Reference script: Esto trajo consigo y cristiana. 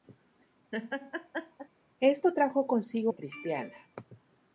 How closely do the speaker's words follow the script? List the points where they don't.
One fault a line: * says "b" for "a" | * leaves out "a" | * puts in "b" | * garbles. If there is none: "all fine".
all fine